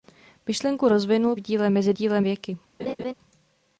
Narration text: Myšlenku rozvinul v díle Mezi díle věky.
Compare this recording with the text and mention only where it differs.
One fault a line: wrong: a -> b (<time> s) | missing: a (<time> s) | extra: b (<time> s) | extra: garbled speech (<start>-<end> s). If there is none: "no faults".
no faults